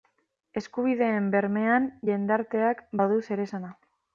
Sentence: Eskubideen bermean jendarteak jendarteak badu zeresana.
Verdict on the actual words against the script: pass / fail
fail